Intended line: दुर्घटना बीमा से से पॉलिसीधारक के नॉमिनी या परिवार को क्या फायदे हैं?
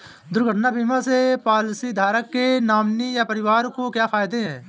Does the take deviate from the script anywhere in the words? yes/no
yes